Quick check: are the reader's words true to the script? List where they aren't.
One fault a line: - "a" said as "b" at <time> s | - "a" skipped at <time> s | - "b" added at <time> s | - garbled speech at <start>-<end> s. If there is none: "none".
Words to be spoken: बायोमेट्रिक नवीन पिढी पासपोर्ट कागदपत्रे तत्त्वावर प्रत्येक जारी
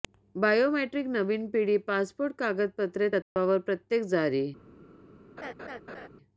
none